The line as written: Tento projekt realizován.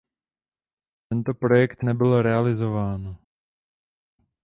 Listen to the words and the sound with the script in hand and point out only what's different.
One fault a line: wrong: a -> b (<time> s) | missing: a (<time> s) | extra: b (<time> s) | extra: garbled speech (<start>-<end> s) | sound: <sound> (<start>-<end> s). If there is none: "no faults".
extra: nebyl (1.8 s)